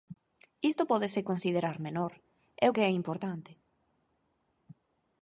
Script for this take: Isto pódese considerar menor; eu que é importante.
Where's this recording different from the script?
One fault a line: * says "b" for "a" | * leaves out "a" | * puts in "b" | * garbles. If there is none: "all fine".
all fine